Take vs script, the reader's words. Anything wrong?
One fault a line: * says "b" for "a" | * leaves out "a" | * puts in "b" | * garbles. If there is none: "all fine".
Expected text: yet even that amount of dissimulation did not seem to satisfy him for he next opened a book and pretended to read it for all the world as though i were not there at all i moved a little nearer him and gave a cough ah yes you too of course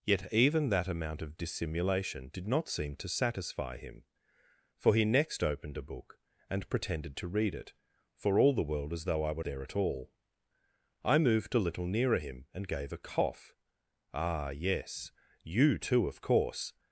* leaves out "not"